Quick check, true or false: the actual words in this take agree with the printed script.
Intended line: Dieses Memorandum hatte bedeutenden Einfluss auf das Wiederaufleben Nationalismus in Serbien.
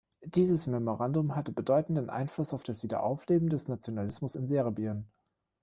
false